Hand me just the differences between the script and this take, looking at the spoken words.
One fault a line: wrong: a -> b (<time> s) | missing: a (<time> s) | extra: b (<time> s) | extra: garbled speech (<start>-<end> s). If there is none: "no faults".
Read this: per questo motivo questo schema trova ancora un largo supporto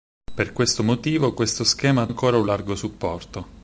missing: trova (2.1 s)